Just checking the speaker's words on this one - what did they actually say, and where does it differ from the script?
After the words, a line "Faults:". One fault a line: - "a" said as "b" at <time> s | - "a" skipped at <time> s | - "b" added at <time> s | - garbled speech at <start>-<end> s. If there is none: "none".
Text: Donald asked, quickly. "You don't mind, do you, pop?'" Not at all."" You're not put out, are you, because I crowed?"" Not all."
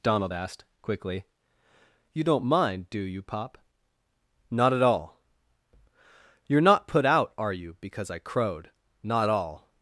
Donald asked, quickly. "You don't mind, do you, pop?'" Not at all."" You're not put out, are you, because I crowed?"" Not all."
Faults:
none